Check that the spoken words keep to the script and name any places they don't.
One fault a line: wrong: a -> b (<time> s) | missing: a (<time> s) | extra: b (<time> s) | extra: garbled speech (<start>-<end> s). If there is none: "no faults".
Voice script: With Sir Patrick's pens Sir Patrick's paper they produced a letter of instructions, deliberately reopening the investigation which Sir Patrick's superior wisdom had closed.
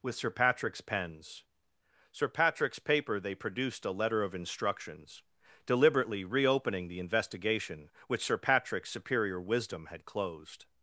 no faults